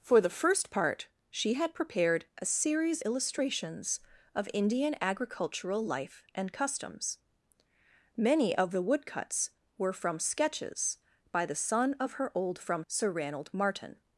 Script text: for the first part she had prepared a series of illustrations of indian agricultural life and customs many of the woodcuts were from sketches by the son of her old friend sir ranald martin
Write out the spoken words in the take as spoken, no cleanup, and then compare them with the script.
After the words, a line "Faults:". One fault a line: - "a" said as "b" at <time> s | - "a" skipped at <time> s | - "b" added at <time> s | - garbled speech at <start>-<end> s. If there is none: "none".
for the first part she had prepared a series illustrations of indian agricultural life and customs many of the woodcuts were from sketches by the son of her old from sir ranald martin
Faults:
- "of" skipped at 3.0 s
- "friend" said as "from" at 12.6 s